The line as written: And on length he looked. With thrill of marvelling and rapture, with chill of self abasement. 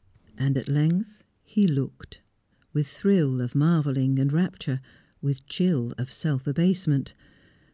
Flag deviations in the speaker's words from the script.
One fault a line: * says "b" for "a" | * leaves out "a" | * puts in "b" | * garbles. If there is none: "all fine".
* says "at" for "on"